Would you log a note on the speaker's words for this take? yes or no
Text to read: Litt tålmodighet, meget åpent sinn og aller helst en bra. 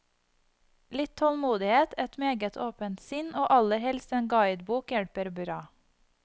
yes